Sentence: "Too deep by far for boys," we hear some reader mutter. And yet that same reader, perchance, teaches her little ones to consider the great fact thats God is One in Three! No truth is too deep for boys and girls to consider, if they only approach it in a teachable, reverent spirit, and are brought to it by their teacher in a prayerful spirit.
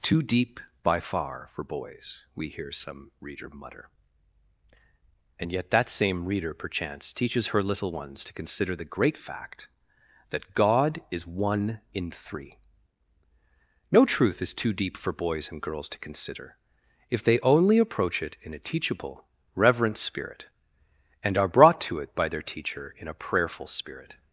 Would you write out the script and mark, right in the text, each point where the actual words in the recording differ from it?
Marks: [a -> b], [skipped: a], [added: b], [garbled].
"Too deep by far for boys," we hear some reader mutter. And yet that same reader, perchance, teaches her little ones to consider the great fact [thats -> that] God is One in Three! No truth is too deep for boys and girls to consider, if they only approach it in a teachable, reverent spirit, and are brought to it by their teacher in a prayerful spirit.